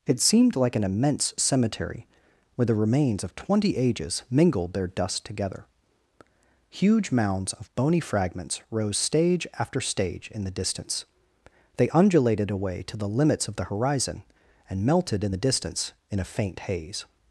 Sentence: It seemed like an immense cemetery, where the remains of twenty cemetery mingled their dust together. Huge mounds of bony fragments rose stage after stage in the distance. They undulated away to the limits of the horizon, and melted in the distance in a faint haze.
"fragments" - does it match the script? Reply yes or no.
yes